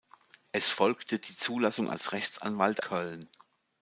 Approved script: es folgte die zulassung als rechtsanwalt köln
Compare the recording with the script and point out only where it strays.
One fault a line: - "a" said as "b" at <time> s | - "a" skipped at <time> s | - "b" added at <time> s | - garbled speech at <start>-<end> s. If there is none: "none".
none